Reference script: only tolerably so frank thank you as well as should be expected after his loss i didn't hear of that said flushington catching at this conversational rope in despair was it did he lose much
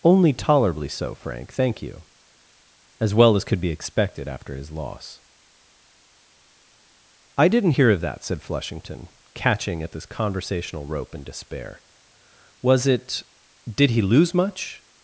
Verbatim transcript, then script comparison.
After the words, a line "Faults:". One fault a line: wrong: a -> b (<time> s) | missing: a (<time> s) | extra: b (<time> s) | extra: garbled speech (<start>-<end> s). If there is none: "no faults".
only tolerably so frank thank you as well as could be expected after his loss i didn't hear of that said flushington catching at this conversational rope in despair was it did he lose much
Faults:
wrong: should -> could (3.5 s)